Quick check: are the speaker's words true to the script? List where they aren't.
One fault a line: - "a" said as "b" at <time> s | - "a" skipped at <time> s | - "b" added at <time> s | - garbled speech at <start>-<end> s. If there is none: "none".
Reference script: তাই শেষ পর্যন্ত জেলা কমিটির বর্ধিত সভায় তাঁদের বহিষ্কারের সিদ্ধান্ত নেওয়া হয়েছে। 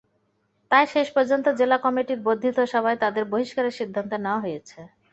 none